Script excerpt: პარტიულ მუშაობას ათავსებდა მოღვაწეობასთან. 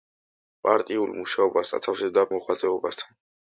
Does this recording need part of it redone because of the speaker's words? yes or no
no